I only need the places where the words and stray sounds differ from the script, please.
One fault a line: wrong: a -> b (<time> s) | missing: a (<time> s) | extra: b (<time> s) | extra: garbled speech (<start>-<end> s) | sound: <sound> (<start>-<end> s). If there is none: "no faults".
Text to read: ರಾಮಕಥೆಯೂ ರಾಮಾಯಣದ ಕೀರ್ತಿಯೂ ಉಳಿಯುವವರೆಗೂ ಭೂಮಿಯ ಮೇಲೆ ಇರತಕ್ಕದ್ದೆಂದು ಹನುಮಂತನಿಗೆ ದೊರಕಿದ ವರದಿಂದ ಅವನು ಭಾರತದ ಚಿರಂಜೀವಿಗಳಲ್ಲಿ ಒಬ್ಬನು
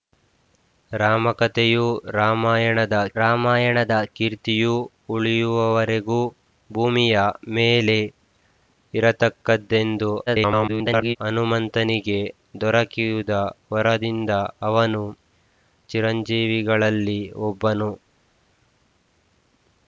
extra: ರಾಮಾಯಣದ (3.2 s)
extra: garbled speech (10.3-11.2 s)
missing: ಭಾರತದ (15.0 s)